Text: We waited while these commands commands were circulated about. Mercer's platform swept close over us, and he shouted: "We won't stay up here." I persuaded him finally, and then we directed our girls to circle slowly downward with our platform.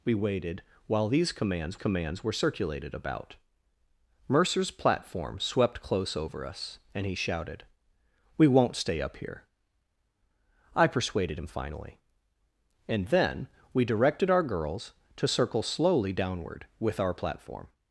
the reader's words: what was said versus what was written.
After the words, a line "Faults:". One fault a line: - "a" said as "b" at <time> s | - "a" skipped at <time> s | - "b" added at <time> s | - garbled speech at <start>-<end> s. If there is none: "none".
We waited while these commands commands were circulated about. Mercer's platform swept close over us, and he shouted: "We won't stay up here." I persuaded him finally, and then we directed our girls to circle slowly downward with our platform.
Faults:
none